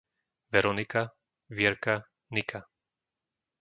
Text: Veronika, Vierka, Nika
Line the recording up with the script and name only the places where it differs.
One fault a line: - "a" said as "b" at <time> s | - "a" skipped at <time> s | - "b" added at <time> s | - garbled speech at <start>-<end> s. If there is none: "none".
none